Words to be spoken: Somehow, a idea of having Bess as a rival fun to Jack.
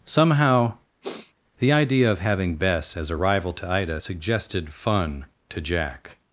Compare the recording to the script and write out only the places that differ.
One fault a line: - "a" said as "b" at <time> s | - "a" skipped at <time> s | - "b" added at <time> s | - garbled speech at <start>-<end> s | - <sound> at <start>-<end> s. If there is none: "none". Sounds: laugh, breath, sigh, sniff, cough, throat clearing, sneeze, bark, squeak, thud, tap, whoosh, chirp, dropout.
- sniff at 1.0-1.3 s
- "a" said as "the" at 1.6 s
- "to Ida suggested" added at 3.5 s